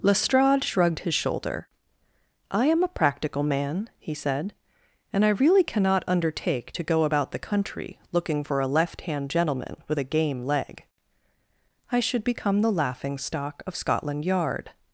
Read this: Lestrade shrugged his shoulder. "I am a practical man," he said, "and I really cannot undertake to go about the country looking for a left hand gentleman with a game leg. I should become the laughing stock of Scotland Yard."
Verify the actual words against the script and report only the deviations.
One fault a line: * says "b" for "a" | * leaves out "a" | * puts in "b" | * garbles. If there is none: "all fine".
all fine